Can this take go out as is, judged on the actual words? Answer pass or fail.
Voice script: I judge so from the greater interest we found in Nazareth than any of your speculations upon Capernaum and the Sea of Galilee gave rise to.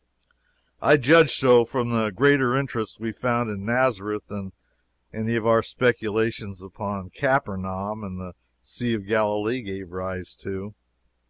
fail